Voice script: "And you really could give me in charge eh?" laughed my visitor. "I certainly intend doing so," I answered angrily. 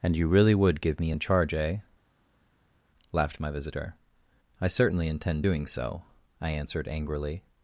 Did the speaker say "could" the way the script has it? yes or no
no